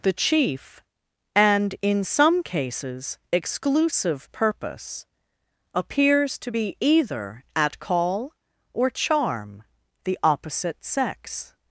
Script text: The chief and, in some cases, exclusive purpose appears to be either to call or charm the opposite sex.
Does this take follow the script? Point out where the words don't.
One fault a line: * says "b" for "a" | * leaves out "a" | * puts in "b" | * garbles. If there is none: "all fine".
* says "at" for "to"